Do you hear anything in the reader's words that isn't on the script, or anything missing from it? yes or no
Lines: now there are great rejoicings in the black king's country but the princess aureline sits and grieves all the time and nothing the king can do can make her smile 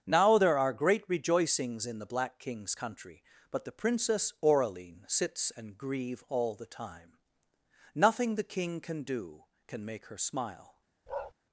yes